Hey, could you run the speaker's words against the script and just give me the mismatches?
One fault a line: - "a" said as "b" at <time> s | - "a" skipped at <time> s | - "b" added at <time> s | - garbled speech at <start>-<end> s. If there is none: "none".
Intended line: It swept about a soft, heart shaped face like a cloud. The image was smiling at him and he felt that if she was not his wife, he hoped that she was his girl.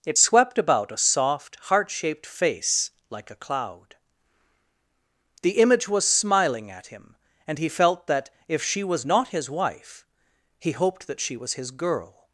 none